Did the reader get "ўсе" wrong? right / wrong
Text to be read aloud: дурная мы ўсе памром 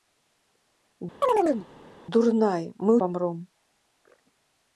wrong